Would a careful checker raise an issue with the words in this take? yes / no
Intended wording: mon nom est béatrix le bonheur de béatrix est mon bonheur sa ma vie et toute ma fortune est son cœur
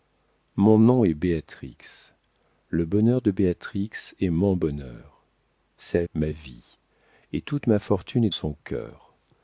no